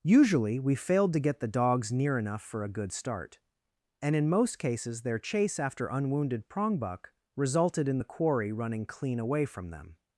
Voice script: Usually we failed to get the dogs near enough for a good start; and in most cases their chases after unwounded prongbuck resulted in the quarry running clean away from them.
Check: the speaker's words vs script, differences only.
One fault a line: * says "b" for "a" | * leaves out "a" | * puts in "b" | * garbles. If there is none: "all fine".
* says "chase" for "chases"